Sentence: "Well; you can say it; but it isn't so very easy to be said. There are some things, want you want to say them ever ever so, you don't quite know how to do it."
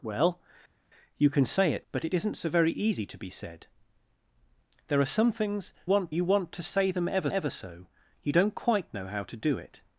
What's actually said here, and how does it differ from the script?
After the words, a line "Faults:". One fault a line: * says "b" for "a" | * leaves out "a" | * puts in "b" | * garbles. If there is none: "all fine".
"Well; you can say it; but it isn't so very easy to be said. There are some things, want you want to say them ever ever so, you don't quite know how to do it."
Faults:
all fine